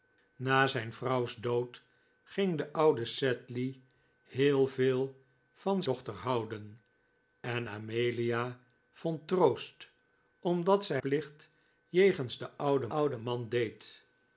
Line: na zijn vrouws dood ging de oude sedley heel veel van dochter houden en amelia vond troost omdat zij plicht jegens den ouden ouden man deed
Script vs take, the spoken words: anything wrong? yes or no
no